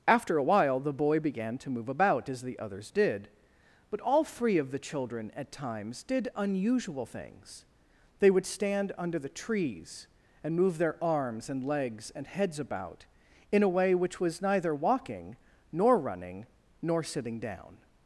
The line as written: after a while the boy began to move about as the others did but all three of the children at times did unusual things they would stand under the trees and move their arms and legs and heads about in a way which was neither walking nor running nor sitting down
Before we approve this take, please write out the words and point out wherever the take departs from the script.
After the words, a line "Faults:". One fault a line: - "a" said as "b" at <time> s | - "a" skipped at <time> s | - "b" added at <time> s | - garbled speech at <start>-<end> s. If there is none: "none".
after a while the boy began to move about as the others did but all three of the children at times did unusual things they would stand under the trees and move their arms and legs and heads about in a way which was neither walking nor running nor sitting down
Faults:
none